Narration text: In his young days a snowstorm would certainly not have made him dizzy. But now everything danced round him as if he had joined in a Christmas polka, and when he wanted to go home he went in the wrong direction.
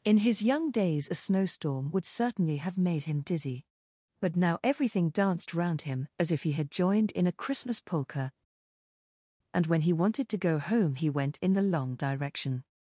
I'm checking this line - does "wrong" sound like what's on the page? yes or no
no